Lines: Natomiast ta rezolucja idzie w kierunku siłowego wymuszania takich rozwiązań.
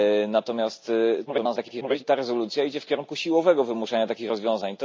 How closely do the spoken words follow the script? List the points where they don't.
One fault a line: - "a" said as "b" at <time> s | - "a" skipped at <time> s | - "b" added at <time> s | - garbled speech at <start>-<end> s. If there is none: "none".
- garbled speech at 1.3-2.0 s